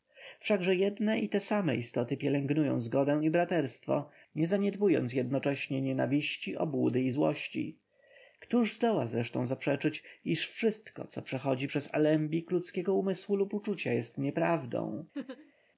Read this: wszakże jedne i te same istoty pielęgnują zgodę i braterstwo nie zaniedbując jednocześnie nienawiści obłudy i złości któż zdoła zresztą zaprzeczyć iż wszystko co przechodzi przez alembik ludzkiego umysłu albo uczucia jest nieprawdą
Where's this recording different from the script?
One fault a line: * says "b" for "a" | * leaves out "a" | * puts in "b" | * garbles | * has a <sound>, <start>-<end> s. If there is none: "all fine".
* says "lub" for "albo"
* has a laugh, 15.1-15.5 s